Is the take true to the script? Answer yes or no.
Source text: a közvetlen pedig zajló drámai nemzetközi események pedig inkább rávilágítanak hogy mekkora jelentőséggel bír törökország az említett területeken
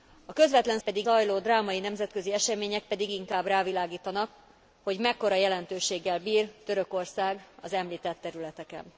yes